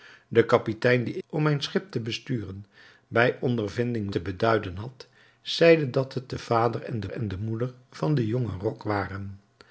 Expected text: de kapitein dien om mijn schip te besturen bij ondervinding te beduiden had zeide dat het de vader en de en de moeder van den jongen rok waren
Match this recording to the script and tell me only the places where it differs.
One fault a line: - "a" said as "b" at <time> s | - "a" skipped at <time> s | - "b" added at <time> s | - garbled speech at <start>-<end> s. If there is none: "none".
none